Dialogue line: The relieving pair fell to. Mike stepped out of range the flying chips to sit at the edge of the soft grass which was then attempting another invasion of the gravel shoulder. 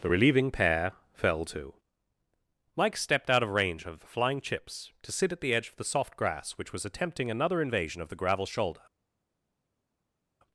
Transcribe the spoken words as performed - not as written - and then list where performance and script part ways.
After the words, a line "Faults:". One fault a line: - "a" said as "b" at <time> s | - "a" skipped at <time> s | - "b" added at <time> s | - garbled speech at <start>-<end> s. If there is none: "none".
The relieving pair fell to. Mike stepped out of range of the flying chips to sit at the edge of the soft grass which was attempting another invasion of the gravel shoulder.
Faults:
- "of" added at 3.8 s
- "then" skipped at 6.8 s